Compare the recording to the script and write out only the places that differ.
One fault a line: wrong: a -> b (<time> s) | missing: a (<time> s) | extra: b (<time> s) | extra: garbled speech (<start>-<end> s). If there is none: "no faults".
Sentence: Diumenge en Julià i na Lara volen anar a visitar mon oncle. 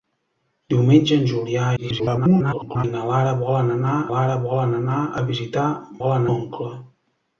extra: garbled speech (1.8-2.9 s)
extra: Lara volen anar (4.1 s)
wrong: mon -> volen (6.0 s)